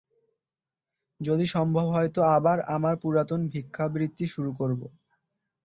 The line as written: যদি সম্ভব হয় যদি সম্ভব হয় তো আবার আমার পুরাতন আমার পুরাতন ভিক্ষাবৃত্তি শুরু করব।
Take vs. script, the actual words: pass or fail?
fail